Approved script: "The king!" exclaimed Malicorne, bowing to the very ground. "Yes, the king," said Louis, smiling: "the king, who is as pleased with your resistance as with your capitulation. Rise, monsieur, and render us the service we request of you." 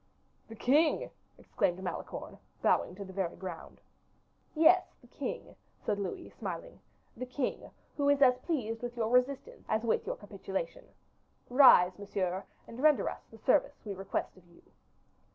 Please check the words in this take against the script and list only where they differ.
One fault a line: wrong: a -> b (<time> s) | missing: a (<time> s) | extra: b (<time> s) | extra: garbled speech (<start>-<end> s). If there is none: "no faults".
no faults